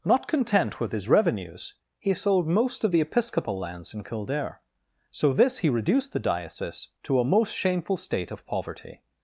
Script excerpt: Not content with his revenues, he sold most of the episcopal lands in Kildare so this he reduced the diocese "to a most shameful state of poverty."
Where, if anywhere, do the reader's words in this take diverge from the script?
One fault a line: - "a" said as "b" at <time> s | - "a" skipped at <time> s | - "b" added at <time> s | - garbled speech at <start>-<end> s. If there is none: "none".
none